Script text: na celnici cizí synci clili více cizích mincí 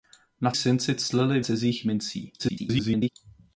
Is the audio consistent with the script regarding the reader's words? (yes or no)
no